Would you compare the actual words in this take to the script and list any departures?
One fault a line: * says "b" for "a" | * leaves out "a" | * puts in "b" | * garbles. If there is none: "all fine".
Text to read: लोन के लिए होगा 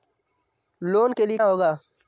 all fine